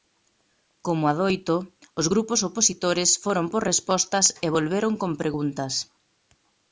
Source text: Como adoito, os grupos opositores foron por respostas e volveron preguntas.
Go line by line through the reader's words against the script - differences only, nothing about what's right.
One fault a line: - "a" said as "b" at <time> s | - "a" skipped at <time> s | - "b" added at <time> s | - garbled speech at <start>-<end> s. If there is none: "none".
- "con" added at 5.0 s